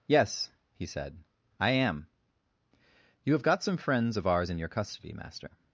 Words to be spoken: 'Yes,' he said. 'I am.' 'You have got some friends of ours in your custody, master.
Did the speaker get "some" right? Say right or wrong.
right